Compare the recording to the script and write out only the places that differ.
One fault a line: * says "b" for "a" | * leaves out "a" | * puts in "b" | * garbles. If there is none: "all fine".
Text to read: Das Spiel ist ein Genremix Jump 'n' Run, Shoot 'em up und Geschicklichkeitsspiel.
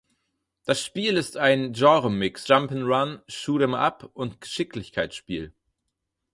all fine